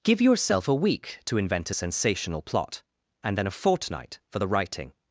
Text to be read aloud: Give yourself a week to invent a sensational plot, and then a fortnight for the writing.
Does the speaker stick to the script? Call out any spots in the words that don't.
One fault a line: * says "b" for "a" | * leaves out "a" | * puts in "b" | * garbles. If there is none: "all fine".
all fine